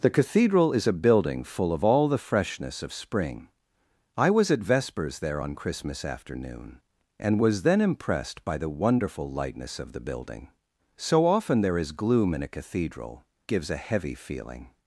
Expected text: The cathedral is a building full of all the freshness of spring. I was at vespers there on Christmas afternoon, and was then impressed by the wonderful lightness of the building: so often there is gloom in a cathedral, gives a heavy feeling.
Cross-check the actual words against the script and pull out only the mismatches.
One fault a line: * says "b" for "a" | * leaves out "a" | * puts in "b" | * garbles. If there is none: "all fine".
all fine